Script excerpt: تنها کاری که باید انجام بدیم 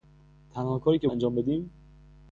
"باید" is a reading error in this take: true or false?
true